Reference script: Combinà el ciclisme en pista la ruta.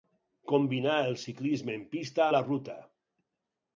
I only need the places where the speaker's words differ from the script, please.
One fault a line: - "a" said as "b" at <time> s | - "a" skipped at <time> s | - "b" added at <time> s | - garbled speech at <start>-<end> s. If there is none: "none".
none